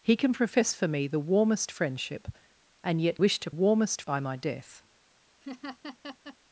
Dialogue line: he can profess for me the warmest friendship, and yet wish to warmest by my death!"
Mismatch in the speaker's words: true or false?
false